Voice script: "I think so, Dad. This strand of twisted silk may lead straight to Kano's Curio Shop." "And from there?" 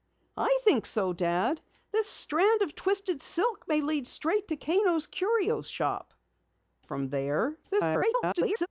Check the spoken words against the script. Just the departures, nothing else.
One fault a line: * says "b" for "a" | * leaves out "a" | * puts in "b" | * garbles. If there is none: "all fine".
* leaves out "And"
* garbles